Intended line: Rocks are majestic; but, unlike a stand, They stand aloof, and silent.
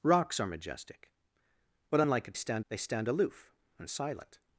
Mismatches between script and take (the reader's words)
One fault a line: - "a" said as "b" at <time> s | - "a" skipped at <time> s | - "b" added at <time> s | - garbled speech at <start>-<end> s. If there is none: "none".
none